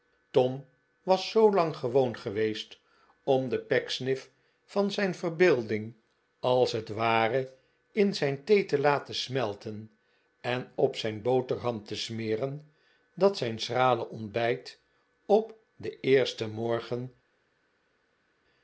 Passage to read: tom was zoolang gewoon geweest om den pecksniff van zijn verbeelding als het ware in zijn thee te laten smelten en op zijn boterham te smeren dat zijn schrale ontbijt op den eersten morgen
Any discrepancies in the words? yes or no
no